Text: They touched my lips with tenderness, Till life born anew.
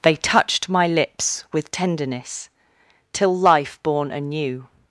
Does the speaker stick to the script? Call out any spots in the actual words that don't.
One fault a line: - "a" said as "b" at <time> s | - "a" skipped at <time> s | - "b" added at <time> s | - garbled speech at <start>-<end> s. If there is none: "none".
none